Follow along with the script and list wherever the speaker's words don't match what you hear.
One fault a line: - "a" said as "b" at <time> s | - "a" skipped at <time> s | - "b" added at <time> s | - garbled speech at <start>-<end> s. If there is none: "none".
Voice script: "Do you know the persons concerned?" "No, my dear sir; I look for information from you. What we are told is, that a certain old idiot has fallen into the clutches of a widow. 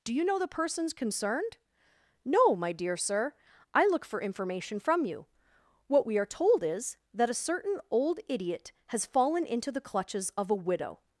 none